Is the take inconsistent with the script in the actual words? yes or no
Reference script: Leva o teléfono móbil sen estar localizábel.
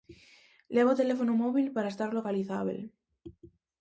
yes